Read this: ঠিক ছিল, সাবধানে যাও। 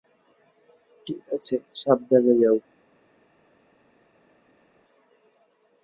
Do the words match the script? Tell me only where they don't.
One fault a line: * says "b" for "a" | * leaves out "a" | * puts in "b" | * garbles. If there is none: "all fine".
* says "আছে" for "ছিল"